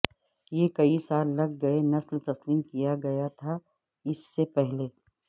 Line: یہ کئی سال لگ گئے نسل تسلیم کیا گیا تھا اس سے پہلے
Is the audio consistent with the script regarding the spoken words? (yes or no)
yes